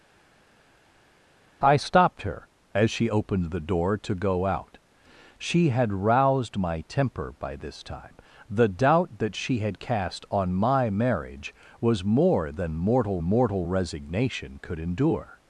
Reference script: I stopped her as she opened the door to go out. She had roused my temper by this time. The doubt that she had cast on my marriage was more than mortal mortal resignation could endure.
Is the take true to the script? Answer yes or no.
yes